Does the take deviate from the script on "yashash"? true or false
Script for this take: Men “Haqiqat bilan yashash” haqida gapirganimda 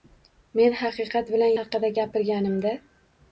true